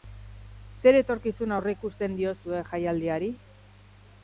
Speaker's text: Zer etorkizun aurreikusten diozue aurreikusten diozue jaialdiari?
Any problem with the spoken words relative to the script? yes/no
yes